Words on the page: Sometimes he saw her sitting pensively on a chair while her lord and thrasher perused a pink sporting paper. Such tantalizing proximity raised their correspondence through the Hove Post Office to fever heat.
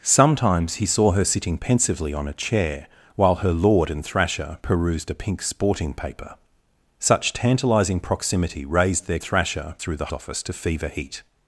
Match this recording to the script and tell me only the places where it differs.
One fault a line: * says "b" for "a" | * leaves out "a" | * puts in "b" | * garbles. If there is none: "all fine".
* says "thrasher" for "correspondence"
* leaves out "Hove Post"